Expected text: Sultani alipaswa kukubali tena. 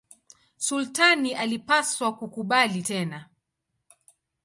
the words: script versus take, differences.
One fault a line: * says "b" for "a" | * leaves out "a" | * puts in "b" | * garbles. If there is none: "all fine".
all fine